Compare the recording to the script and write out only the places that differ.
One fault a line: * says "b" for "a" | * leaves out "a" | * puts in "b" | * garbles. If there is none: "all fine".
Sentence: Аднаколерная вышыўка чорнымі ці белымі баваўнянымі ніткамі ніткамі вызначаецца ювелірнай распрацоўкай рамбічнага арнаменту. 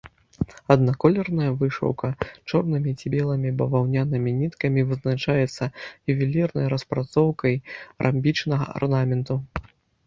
* leaves out "ніткамі"